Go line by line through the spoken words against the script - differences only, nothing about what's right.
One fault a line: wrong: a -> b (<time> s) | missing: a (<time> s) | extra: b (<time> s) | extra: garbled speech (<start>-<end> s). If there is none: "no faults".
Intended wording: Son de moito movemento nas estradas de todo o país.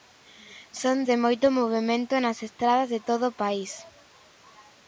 no faults